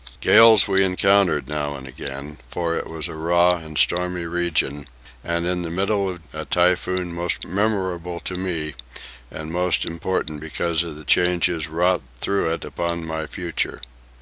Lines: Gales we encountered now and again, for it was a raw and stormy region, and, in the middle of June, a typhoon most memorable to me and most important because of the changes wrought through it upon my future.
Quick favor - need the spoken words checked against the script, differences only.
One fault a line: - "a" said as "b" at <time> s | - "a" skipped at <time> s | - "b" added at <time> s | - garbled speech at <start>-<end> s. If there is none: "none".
- "June" skipped at 6.2 s